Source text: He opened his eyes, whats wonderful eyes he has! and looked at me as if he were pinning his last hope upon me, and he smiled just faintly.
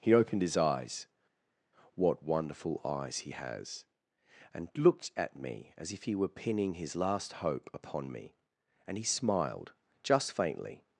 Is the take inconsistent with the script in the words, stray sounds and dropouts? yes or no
yes